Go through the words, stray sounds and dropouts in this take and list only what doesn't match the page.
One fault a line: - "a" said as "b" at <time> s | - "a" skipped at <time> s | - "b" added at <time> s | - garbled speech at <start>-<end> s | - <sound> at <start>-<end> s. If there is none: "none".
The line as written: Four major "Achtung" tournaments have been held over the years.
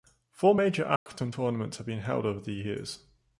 - dropout at 1.0-1.1 s